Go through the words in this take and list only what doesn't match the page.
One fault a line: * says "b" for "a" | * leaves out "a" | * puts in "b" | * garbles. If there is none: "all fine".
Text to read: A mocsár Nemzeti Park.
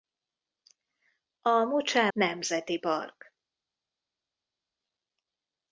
all fine